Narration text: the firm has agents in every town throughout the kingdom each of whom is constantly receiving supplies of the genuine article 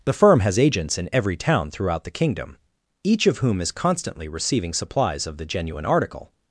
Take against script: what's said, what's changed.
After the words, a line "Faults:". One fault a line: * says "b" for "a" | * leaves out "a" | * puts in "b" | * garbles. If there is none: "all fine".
the firm has agents in every town throughout the kingdom each of whom is constantly receiving supplies of the genuine article
Faults:
all fine